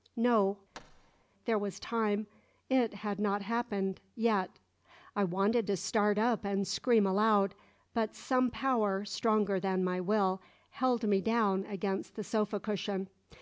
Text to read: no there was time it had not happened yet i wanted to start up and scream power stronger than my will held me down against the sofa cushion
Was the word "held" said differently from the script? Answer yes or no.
no